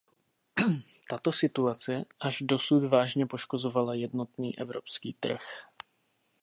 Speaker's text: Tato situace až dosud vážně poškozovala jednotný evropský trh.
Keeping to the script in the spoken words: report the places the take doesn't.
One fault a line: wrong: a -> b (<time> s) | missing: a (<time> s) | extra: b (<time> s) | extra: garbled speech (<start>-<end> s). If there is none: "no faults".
no faults